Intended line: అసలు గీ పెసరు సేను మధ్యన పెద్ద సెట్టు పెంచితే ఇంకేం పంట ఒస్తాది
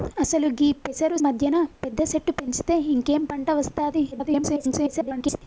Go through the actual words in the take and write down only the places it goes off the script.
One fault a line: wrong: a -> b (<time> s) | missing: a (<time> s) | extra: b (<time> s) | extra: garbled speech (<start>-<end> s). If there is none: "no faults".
missing: సేను (1.2 s)
extra: garbled speech (4.1-5.4 s)